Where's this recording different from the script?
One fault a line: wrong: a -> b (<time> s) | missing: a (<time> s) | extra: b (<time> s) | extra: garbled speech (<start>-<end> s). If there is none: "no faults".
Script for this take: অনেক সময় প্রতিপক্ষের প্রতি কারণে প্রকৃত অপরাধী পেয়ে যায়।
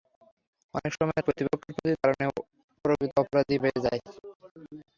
no faults